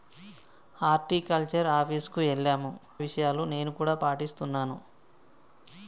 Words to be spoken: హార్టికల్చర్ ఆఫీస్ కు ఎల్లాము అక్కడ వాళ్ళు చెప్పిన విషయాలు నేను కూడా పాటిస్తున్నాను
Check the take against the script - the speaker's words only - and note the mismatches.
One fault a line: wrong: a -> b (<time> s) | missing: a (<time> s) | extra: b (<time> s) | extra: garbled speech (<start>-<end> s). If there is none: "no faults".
missing: అక్కడ వాళ్ళు చెప్పిన (2.7 s)